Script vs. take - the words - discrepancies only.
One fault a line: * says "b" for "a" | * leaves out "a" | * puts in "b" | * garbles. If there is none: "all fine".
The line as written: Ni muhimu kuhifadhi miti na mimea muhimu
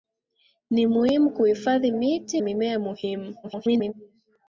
* leaves out "na"
* garbles